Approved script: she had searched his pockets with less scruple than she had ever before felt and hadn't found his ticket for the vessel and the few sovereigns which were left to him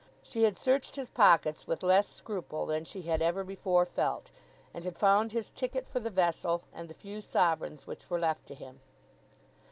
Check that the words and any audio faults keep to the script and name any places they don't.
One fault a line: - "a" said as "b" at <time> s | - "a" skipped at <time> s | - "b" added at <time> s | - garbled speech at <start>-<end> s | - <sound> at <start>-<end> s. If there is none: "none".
- "hadn't" said as "had" at 4.8 s